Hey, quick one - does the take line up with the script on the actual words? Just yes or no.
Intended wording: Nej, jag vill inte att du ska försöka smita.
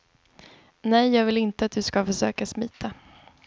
yes